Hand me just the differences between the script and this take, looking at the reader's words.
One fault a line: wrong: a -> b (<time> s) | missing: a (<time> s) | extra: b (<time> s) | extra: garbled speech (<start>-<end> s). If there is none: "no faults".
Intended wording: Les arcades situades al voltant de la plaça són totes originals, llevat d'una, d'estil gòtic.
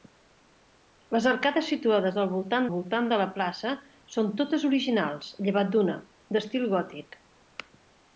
extra: voltant (2.7 s)